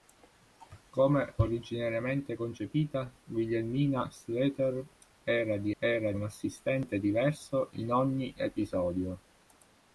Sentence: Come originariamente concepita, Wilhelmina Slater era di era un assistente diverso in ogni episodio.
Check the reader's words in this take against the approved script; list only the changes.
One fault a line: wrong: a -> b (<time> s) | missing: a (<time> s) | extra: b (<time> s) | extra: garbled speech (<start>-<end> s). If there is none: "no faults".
no faults